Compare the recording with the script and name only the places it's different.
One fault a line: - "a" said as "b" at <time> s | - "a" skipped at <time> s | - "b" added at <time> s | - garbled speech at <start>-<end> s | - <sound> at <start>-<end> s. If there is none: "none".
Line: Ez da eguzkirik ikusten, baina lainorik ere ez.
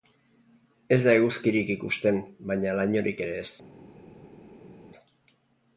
none